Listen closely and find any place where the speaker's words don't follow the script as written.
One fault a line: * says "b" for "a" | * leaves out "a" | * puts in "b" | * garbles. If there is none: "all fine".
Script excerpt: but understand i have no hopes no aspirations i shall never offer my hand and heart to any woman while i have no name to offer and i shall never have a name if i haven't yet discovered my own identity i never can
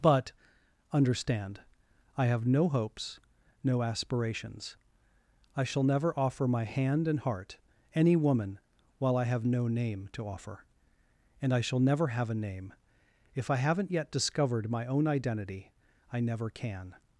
* leaves out "to"